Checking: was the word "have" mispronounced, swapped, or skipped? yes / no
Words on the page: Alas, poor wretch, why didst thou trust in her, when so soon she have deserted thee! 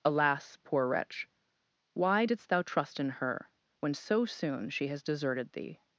yes